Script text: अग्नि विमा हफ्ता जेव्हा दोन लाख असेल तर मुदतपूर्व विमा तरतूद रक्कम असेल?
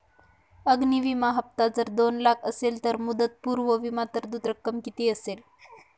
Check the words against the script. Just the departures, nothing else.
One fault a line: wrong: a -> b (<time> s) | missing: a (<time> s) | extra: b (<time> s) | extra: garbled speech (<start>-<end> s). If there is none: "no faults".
wrong: जेव्हा -> जर (1.8 s)
extra: किती (4.9 s)